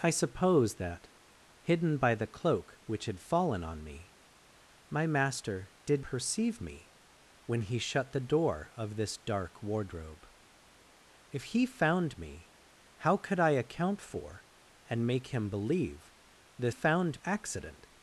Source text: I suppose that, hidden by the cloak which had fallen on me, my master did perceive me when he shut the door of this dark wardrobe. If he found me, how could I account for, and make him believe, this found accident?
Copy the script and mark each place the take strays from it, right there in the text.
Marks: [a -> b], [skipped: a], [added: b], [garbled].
I suppose that, hidden by the cloak which had fallen on me, my master did perceive me when he shut the door of this dark wardrobe. If he found me, how could I account for, and make him believe, this found accident?